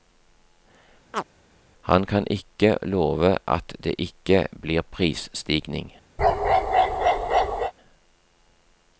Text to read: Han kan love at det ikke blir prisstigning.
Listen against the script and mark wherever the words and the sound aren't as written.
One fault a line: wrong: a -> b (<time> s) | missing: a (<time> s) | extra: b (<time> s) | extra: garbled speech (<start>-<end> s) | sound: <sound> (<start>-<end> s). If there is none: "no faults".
sound: chirp (1.1-1.2 s)
extra: ikke (2.3 s)
sound: bark (6.2-7.7 s)